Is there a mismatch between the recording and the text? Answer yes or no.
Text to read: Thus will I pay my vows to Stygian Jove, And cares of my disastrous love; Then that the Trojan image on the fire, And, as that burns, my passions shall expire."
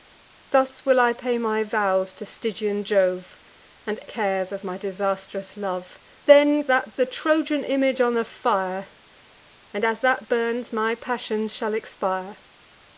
no